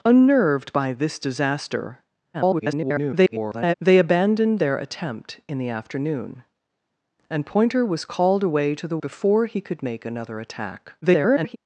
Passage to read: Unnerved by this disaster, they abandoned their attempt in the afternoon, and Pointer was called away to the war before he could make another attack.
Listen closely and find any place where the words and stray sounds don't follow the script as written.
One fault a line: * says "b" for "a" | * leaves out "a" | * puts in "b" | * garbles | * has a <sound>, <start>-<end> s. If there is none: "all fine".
* garbles
* leaves out "war"
* garbles